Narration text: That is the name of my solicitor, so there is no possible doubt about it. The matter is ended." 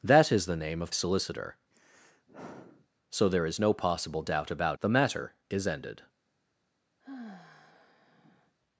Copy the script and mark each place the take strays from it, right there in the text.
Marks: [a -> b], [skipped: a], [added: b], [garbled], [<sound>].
That is the name of [skipped: my] solicitor, [sigh] so there is no possible doubt about [skipped: it.] The matter is ended." [sigh]